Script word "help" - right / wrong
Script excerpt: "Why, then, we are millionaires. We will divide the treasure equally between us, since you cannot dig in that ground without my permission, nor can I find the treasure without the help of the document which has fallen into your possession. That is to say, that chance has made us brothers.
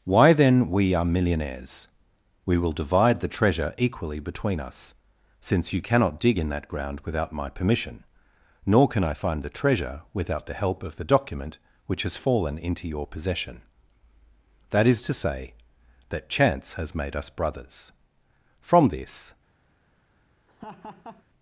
right